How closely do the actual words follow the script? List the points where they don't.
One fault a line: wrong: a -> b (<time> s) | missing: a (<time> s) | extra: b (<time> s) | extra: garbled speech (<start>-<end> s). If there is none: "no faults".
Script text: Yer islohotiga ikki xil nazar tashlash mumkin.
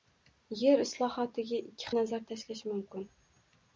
missing: xil (1.9 s)